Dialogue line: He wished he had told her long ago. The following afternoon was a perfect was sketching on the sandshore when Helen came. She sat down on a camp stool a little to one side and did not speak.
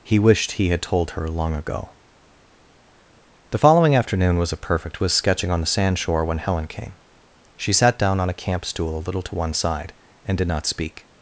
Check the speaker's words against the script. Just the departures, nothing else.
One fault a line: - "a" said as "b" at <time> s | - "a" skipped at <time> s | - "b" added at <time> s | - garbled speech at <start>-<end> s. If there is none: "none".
none